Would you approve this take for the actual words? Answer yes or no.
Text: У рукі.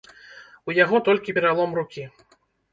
no